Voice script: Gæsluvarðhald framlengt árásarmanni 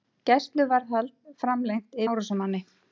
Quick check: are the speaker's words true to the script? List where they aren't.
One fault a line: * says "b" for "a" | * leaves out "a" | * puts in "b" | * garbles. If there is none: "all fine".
all fine